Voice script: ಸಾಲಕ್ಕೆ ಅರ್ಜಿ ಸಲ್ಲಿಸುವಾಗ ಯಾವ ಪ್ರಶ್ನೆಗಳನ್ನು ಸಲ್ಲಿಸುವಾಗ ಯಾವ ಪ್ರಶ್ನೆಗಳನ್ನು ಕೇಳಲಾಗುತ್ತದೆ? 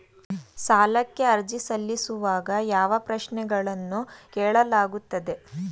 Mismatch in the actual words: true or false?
true